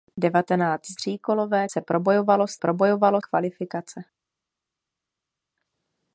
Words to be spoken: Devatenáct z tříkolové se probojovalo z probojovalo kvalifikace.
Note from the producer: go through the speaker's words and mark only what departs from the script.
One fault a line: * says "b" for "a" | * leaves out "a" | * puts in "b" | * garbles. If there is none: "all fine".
all fine